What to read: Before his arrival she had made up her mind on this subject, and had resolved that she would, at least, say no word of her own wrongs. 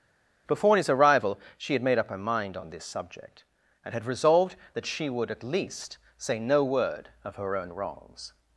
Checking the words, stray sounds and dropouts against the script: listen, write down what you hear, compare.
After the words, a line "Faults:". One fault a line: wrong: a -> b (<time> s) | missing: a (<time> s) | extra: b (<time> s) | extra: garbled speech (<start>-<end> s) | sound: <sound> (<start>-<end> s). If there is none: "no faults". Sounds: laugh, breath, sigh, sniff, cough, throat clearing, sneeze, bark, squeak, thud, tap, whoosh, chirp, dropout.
Before his arrival she had made up her mind on this subject, and had resolved that she would, at least, say no word of her own wrongs.
Faults:
no faults